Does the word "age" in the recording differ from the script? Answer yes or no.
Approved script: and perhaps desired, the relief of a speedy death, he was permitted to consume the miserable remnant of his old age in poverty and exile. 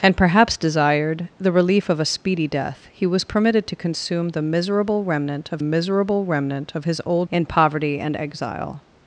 yes